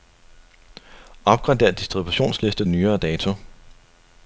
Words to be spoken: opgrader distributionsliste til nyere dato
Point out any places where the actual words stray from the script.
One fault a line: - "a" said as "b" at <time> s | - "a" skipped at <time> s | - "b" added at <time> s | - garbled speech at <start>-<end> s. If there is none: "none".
- "til" skipped at 2.6 s